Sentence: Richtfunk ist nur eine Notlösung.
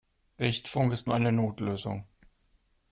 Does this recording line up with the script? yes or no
yes